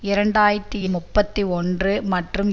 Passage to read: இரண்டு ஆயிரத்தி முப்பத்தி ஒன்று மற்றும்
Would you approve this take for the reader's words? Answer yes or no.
yes